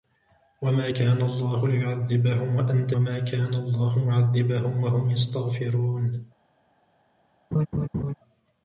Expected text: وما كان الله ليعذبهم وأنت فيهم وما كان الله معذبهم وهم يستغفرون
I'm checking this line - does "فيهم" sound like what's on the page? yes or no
no